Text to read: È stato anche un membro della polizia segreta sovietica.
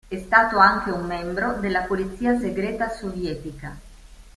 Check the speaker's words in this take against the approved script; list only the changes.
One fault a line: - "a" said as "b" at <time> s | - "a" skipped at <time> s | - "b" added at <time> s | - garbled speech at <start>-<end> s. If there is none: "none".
none